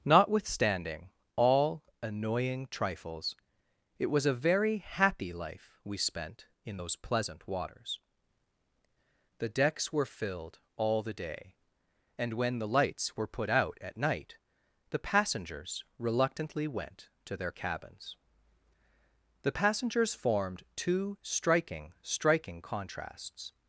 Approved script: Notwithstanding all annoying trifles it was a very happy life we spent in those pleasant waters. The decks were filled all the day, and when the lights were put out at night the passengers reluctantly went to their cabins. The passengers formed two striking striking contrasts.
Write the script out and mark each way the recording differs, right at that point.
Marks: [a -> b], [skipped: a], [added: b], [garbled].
Notwithstanding all annoying trifles it was a very happy life we spent in those pleasant waters. The decks were filled all the day, and when the lights were put out at night the passengers reluctantly went to their cabins. The passengers formed two striking striking contrasts.